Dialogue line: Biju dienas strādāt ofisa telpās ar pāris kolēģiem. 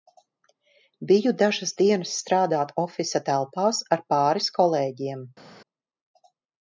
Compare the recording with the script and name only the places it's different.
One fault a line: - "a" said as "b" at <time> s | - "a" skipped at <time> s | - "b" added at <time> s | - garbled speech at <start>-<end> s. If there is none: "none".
- "dažas" added at 1.4 s